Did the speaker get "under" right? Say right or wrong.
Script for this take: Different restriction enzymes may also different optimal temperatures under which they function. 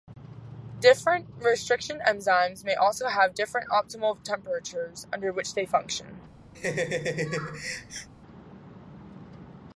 right